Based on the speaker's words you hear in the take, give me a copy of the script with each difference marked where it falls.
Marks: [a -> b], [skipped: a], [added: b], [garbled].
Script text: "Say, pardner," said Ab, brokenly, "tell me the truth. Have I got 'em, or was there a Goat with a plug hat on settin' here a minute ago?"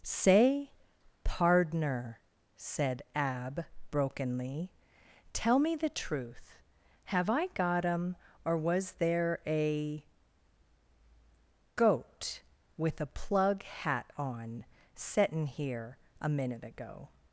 "Say, pardner," said Ab, brokenly, "tell me the truth. Have I got 'em, or was there a Goat with a plug hat on settin' here a minute ago?"